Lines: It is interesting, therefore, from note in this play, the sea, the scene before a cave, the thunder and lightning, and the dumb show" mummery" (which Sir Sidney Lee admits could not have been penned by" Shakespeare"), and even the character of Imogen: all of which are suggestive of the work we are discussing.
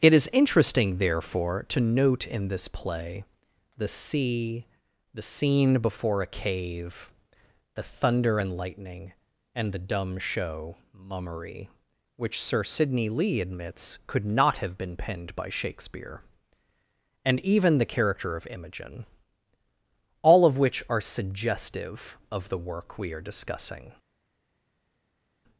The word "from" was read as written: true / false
false